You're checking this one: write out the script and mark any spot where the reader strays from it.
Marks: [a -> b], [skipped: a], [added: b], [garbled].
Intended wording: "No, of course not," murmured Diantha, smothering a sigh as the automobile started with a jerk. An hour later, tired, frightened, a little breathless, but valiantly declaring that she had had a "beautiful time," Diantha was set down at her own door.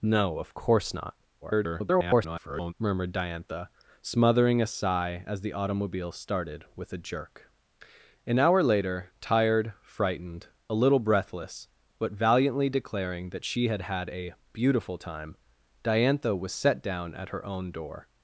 "No, of course not," [garbled] murmured Diantha, smothering a sigh as the automobile started with a jerk. An hour later, tired, frightened, a little breathless, but valiantly declaring that she had had a "beautiful time," Diantha was set down at her own door.